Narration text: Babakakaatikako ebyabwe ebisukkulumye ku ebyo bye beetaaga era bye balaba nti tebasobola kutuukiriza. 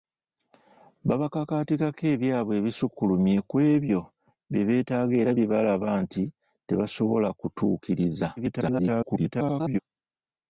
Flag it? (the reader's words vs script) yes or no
yes